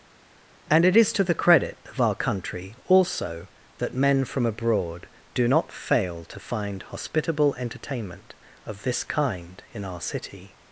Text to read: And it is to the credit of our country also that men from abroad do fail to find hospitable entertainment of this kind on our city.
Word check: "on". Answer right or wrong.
wrong